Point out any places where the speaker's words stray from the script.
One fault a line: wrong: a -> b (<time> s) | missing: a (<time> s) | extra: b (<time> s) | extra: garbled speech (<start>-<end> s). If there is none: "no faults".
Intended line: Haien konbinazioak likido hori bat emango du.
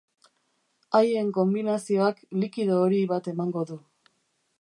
no faults